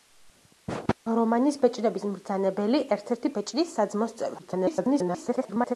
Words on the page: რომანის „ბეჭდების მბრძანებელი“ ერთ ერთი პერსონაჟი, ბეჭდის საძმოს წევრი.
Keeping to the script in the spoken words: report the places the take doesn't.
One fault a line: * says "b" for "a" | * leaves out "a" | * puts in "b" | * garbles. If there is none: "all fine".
* leaves out "პერსონაჟი"
* garbles